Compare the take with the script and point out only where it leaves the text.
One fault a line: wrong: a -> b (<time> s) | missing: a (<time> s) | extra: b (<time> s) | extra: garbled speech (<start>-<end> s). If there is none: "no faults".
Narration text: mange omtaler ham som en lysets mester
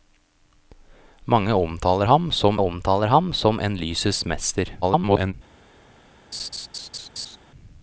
extra: omtaler ham som (2.6 s)
extra: garbled speech (4.8-5.3 s)